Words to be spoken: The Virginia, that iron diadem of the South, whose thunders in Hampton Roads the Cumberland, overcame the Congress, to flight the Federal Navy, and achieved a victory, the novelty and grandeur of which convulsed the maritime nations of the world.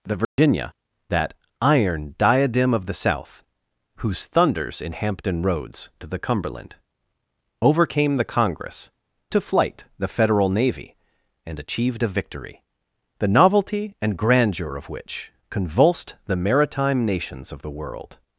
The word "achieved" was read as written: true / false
true